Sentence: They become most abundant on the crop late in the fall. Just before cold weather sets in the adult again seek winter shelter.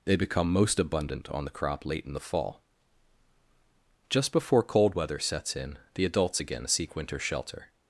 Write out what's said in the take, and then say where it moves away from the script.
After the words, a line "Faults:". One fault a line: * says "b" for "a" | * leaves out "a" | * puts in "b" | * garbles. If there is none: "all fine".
They become most abundant on the crop late in the fall. Just before cold weather sets in the adults again seek winter shelter.
Faults:
* says "adults" for "adult"